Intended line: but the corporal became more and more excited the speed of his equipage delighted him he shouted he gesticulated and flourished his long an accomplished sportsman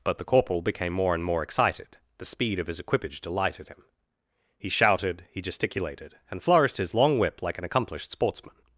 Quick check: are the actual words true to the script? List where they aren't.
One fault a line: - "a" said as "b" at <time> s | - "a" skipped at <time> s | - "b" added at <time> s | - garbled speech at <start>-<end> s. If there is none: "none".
- "whip like" added at 7.2 s